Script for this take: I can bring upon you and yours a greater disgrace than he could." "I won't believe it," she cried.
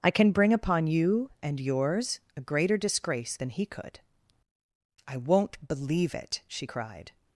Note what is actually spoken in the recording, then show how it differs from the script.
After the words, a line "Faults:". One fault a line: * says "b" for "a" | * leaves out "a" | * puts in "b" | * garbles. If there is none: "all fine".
I can bring upon you and yours a greater disgrace than he could." "I won't believe it," she cried.
Faults:
all fine